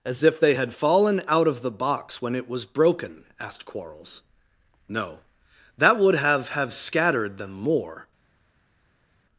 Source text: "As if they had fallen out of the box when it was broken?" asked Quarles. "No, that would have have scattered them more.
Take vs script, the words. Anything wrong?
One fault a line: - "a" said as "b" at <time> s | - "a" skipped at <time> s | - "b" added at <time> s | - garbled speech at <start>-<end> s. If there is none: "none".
none